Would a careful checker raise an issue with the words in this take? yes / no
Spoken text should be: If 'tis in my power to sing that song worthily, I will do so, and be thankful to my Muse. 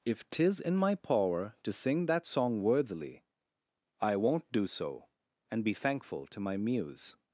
yes